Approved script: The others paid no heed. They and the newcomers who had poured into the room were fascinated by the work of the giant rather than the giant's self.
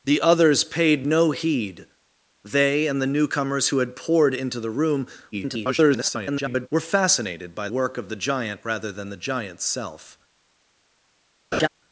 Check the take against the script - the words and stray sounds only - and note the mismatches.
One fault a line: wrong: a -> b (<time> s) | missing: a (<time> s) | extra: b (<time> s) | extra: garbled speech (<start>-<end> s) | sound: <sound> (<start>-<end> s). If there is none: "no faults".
extra: garbled speech (5.3-6.7 s)
missing: the (7.7 s)
sound: laugh (11.5-11.7 s)